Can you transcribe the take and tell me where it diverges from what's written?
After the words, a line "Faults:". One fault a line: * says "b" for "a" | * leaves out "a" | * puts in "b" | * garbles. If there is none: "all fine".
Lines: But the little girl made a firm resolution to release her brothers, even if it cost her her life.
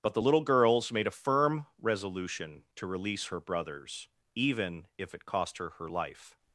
But the little girls made a firm resolution to release her brothers, even if it cost her her life.
Faults:
* says "girls" for "girl"